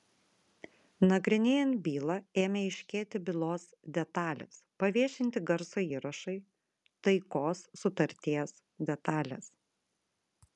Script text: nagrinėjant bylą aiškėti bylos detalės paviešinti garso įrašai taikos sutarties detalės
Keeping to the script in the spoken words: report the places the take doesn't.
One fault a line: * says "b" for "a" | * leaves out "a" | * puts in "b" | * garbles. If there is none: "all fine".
* puts in "ėmė"